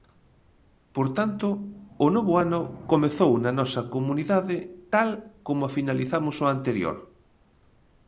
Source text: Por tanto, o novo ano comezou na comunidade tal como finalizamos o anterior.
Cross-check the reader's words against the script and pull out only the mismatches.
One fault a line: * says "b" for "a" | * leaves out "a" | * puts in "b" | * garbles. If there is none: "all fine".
* puts in "nosa"